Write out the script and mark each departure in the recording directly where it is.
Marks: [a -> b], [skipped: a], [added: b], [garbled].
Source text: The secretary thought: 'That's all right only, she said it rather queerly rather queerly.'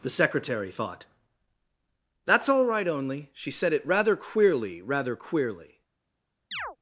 The secretary thought: 'That's all right only, she said it rather queerly rather queerly.'